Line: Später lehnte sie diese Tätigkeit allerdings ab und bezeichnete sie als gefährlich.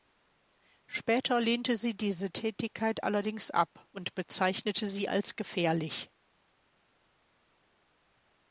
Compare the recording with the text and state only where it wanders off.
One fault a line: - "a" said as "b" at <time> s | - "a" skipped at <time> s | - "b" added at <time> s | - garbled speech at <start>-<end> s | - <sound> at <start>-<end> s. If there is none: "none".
none